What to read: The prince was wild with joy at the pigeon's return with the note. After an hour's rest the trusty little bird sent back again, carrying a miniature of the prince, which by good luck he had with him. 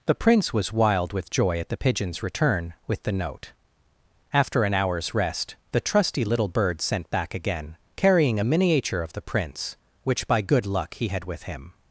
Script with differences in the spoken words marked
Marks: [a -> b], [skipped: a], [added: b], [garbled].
The prince was wild with joy at the pigeon's return with the note. After an hour's rest the trusty little bird sent back again, carrying a miniature of the prince, which by good luck he had with him.